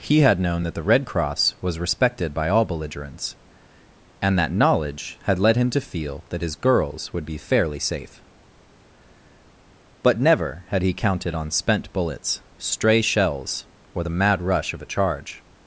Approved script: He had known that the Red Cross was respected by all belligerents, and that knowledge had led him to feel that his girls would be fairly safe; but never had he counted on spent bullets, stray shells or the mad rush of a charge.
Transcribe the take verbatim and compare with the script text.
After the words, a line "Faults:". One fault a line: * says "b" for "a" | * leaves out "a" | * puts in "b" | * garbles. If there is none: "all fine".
He had known that the Red Cross was respected by all belligerents, and that knowledge had led him to feel that his girls would be fairly safe; but never had he counted on spent bullets, stray shells or the mad rush of a charge.
Faults:
all fine